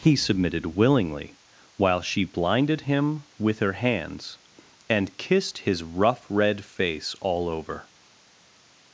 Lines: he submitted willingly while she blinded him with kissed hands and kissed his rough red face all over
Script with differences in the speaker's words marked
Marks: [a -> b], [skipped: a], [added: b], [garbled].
he submitted willingly while she blinded him with [kissed -> her] hands and kissed his rough red face all over